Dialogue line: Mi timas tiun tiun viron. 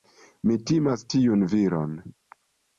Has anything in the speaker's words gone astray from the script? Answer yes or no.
yes